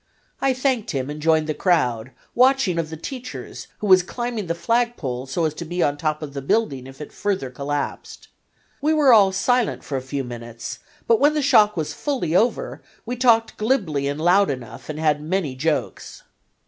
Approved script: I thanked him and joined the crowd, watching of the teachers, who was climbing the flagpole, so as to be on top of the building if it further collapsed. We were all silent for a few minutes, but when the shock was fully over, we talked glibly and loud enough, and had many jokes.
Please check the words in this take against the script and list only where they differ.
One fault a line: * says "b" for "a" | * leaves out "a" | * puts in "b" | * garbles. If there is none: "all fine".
all fine